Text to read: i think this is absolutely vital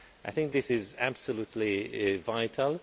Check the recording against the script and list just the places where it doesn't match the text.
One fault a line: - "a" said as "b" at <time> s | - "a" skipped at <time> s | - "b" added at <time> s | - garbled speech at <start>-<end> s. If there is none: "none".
none